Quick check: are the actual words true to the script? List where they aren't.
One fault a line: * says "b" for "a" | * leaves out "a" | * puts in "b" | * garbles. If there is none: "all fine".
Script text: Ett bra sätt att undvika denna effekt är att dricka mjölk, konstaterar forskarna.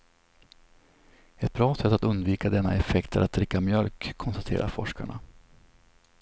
all fine